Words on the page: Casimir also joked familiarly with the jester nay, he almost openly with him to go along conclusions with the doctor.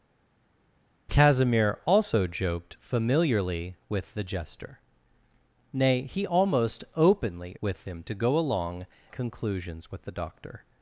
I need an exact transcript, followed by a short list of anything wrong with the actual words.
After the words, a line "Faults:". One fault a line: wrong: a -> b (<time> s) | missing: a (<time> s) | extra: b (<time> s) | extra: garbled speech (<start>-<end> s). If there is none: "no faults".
Casimir also joked familiarly with the jester nay, he almost openly with him to go along conclusions with the doctor.
Faults:
no faults